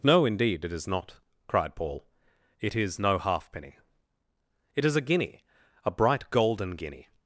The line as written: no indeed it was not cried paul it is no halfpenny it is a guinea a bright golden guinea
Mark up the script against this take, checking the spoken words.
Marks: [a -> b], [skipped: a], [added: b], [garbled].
no indeed it [was -> is] not cried paul it is no halfpenny it is a guinea a bright golden guinea